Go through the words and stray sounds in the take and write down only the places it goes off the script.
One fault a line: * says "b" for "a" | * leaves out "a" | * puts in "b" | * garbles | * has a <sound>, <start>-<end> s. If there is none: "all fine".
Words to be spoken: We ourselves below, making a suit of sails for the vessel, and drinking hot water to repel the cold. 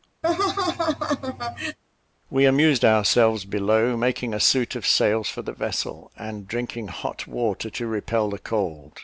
* has a laugh, 0.2-1.8 s
* puts in "amused"